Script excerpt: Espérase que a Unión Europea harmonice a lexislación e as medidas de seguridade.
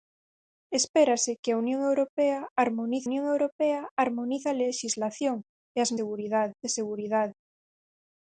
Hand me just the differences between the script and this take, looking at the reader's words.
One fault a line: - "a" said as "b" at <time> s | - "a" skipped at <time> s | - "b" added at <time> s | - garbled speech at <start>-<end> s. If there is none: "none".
- "Unión Europea harmonice" added at 3.1 s
- "medidas" said as "seguridade" at 6.0 s